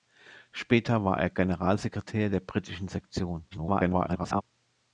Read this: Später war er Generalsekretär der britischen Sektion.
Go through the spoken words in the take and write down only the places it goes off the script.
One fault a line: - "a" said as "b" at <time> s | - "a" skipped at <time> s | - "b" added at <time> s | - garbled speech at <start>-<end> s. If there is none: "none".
- garbled speech at 3.5-4.4 s